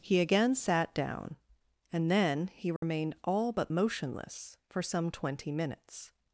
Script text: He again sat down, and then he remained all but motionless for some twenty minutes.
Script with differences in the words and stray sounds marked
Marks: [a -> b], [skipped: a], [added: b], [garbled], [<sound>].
He again sat down, and then he remained [dropout] all but motionless for some twenty minutes.